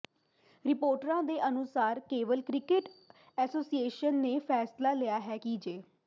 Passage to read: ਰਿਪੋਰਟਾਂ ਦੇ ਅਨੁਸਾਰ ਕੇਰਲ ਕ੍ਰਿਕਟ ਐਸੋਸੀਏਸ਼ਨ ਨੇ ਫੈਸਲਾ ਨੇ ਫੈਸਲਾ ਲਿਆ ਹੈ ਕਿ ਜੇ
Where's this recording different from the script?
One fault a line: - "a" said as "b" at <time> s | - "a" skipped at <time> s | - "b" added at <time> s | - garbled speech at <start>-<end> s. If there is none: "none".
- "ਨੇ ਫੈਸਲਾ" skipped at 4.9 s